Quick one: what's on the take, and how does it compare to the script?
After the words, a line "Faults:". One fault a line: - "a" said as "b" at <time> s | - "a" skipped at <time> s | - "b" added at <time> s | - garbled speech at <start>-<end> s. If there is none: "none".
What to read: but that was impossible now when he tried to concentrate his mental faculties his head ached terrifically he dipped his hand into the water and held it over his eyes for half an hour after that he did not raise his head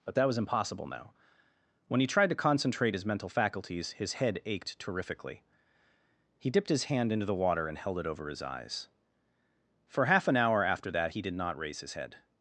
but that was impossible now when he tried to concentrate his mental faculties his head ached terrifically he dipped his hand into the water and held it over his eyes for half an hour after that he did not raise his head
Faults:
none